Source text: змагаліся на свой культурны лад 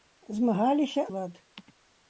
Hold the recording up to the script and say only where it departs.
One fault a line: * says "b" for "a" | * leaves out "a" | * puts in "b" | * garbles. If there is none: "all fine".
* leaves out "на свой культурны"